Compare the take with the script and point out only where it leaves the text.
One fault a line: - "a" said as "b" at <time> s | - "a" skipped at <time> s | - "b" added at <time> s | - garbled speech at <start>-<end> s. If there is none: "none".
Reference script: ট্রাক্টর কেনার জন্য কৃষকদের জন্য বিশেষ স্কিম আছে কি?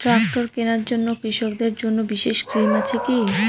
none